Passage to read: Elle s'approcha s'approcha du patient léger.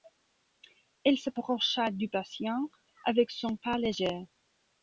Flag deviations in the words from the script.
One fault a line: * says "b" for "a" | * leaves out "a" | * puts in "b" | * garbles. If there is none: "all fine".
* leaves out "s'approcha"
* puts in "avec son pas"